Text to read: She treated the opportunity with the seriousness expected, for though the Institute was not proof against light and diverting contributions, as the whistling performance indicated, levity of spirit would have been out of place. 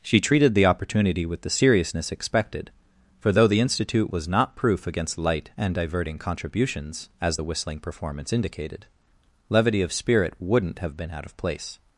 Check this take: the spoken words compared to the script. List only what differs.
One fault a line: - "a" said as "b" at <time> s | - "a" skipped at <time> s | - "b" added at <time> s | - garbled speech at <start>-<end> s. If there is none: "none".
- "would" said as "wouldn't" at 10.4 s